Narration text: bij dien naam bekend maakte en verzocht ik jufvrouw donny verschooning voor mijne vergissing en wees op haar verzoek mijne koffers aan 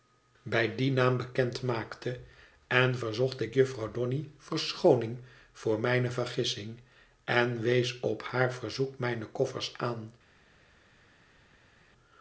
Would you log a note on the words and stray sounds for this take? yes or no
no